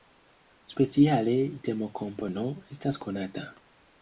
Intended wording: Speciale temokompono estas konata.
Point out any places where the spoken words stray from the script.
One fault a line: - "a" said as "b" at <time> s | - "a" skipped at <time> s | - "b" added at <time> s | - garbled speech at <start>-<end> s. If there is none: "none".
none